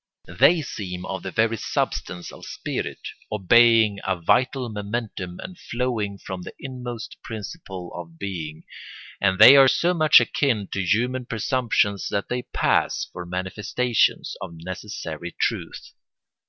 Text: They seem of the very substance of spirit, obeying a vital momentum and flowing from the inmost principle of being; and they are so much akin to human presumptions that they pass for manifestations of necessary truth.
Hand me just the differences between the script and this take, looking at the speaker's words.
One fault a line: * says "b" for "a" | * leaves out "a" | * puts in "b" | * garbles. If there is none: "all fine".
all fine